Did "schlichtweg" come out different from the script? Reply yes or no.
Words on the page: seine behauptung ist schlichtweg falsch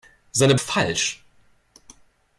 yes